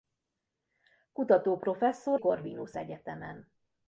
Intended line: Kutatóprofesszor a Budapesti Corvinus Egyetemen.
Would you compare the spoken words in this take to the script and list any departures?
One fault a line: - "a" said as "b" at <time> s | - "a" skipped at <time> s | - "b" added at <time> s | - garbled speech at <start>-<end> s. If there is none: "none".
- "a Budapesti" skipped at 2.2 s